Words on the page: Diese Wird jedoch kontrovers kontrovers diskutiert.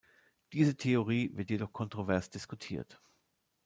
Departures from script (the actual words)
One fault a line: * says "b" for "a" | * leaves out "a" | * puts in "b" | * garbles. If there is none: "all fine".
* puts in "Theorie"
* leaves out "kontrovers"